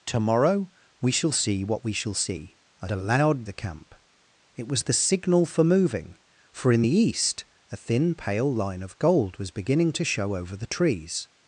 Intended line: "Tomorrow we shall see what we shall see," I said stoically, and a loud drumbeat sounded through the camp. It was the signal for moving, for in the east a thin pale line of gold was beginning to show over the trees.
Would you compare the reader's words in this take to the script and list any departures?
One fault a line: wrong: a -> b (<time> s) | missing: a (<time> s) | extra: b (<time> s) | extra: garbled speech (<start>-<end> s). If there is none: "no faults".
missing: said stoically and (2.9 s)
missing: drumbeat sounded through (3.4 s)